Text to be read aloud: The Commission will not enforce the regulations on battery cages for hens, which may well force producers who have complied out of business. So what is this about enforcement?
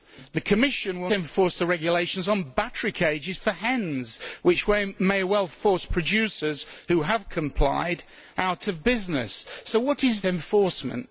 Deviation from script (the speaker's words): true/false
true